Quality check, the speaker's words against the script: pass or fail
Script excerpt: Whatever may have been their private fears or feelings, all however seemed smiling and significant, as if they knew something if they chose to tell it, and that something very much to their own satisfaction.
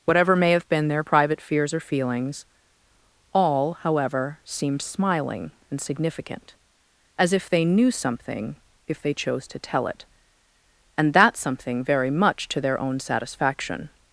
pass